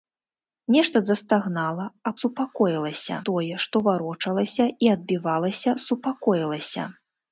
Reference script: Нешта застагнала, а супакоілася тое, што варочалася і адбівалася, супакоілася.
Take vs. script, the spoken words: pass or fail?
pass